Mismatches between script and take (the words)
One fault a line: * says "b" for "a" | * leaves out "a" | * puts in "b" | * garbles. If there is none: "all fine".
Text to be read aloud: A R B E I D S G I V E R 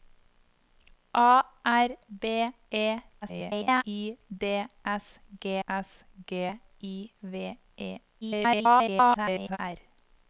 * garbles
* puts in "S G"
* garbles